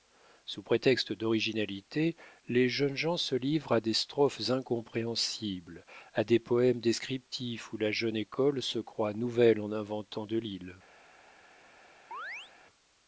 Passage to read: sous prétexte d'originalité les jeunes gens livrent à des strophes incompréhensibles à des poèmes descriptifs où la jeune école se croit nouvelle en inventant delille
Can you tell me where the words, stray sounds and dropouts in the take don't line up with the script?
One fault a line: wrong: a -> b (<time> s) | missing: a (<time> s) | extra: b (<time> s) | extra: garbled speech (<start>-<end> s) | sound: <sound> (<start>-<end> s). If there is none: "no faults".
extra: se (3.2 s)
sound: chirp (12.1-12.5 s)